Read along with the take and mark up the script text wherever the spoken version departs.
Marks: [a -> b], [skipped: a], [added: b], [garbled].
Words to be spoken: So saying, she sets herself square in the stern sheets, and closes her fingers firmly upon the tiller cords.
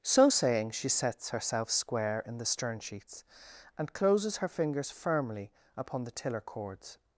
So saying, she sets herself square in the stern sheets, and closes her fingers firmly upon the tiller cords.